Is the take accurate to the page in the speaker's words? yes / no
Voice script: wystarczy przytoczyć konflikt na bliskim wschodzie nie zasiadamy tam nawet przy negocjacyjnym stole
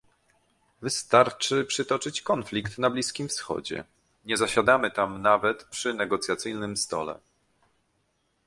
yes